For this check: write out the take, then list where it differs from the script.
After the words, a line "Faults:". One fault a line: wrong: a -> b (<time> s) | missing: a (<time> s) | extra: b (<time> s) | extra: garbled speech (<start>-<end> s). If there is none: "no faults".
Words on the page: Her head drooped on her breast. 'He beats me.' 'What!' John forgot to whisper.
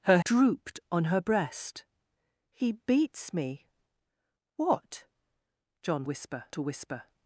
Her drooped on her breast. 'He beats me.' 'What!' John whisper to whisper.
Faults:
missing: head (0.2 s)
wrong: forgot -> whisper (6.0 s)